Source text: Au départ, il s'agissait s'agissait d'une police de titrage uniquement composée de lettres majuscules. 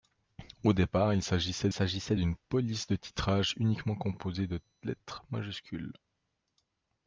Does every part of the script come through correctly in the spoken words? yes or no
yes